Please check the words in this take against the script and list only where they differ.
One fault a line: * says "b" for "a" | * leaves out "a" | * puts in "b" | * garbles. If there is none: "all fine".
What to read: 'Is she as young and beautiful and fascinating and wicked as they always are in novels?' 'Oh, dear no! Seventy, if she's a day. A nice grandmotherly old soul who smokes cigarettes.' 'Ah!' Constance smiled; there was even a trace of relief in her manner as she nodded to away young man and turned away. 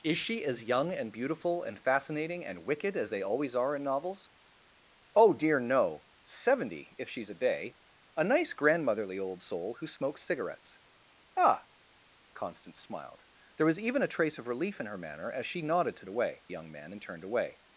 all fine